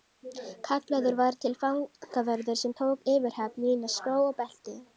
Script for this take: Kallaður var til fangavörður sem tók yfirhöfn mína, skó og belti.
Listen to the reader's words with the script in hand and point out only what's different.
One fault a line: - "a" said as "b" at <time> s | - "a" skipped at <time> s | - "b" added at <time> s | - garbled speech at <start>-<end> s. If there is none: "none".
none